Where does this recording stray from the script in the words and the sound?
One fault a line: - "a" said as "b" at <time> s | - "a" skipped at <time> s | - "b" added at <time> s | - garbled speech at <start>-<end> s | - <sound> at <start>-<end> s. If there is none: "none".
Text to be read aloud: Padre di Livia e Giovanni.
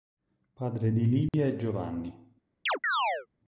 - dropout at 1.3-1.3 s
- chirp at 2.7-3.3 s